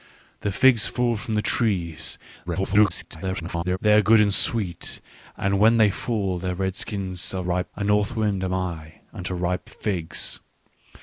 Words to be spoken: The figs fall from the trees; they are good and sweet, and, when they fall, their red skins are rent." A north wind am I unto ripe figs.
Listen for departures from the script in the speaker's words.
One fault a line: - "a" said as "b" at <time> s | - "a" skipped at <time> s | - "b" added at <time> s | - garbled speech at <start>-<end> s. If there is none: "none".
- garbled speech at 2.5-3.8 s
- "rent" said as "ripe" at 7.4 s